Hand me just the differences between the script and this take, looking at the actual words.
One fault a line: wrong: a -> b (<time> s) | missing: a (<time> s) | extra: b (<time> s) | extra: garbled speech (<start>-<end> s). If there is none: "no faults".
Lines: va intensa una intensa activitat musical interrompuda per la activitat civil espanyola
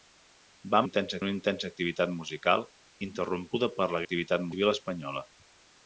no faults